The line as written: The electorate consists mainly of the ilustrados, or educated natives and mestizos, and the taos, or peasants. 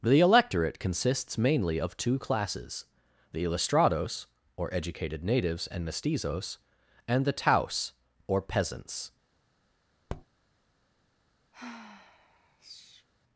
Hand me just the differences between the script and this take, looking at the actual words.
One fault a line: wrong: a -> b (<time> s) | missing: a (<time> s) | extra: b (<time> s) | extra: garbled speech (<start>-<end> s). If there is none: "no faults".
extra: two classes (1.9 s)